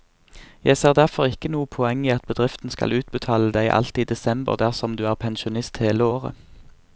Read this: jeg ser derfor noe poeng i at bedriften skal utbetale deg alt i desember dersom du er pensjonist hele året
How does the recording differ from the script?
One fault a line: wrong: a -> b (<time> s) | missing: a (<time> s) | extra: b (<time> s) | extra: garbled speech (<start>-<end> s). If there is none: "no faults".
extra: ikke (1.3 s)